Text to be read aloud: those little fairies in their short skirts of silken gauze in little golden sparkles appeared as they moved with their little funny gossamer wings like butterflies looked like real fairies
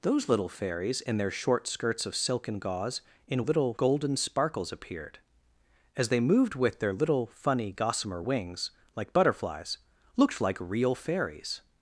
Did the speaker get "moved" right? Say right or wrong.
right